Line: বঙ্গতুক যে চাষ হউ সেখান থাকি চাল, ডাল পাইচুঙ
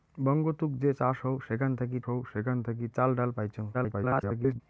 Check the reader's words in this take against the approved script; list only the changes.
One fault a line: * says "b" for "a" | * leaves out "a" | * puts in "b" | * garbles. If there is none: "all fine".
* puts in "হউ সেখান থাকি"
* garbles